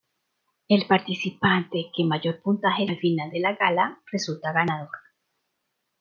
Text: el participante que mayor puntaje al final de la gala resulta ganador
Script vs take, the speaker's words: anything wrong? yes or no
no